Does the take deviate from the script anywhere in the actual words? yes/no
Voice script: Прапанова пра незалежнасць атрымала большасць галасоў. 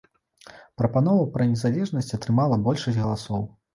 no